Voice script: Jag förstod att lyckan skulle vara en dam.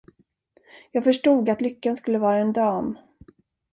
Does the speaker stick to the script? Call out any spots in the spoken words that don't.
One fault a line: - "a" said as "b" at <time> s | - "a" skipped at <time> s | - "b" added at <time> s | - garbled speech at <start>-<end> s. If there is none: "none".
none